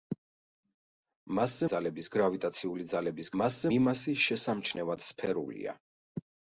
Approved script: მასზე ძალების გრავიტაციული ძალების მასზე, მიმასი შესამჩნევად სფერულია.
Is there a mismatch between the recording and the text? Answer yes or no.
no